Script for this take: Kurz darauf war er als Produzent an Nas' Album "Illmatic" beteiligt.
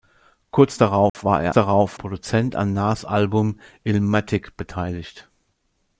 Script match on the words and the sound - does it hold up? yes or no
no